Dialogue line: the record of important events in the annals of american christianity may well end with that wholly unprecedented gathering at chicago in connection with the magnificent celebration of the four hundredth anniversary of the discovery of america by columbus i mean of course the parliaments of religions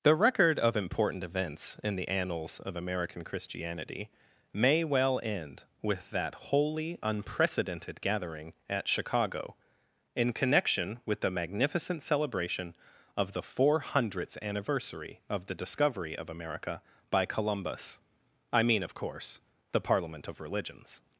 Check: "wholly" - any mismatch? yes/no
no